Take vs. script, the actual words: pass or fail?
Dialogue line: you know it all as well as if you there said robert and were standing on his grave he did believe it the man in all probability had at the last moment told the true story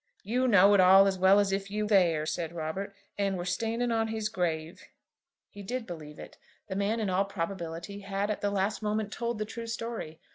pass